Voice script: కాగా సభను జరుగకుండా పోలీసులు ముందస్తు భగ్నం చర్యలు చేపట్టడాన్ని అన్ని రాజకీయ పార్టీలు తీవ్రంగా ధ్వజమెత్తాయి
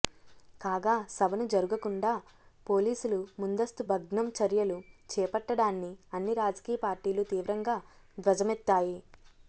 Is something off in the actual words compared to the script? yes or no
no